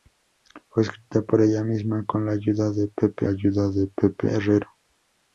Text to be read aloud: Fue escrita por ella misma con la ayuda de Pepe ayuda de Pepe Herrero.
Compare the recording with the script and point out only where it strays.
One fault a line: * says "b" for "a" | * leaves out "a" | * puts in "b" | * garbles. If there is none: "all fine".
all fine